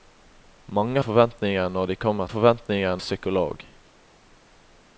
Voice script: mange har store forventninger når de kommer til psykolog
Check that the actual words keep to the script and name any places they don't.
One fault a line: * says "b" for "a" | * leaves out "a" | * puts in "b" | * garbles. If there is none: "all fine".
* leaves out "har store"
* says "forventninger" for "til"